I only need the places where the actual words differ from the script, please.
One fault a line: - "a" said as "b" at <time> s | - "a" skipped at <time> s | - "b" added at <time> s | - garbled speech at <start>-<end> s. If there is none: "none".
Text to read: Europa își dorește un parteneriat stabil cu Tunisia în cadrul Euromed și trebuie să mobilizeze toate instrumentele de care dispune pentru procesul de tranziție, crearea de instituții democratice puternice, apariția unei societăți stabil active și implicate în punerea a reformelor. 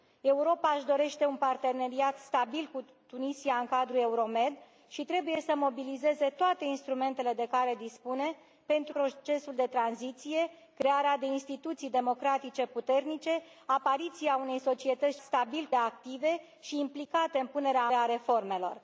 none